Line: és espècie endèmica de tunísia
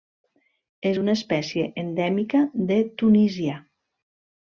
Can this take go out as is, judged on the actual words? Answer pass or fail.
fail